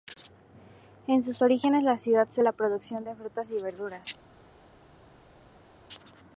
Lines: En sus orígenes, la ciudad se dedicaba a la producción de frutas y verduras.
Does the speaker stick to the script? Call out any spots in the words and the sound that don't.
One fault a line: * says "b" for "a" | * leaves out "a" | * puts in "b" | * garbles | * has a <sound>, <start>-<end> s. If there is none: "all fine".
* leaves out "dedicaba"